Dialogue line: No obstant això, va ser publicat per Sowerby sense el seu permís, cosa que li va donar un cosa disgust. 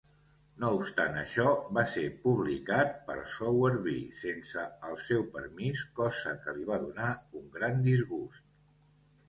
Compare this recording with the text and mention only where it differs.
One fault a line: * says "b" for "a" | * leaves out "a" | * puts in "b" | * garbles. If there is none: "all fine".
* says "gran" for "cosa"